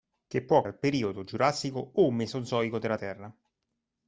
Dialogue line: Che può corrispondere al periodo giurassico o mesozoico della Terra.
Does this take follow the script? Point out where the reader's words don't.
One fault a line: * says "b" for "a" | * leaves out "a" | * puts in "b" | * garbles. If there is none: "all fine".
* leaves out "corrispondere"